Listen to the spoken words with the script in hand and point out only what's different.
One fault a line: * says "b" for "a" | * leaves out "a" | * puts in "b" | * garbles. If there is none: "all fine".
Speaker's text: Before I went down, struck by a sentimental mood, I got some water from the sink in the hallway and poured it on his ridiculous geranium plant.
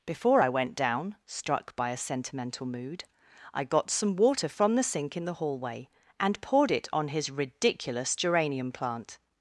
all fine